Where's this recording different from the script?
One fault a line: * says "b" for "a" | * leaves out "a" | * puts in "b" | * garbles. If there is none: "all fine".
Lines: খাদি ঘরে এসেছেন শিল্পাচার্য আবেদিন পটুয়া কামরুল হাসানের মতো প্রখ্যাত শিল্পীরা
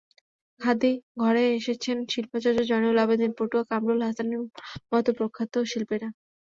* puts in "জয়নুল"